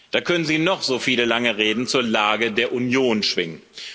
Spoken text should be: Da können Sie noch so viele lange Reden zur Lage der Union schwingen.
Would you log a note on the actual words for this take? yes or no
no